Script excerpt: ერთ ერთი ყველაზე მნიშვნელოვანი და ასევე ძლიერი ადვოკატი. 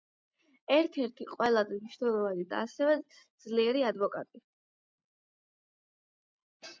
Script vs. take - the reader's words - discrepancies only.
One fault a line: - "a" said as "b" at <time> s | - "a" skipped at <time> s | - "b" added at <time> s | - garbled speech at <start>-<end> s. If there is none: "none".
none